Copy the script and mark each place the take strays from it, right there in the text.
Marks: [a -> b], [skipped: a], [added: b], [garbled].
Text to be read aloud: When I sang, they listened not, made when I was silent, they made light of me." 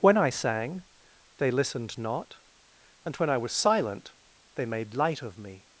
When I sang, they listened not, [made -> and] when I was silent, they made light of me."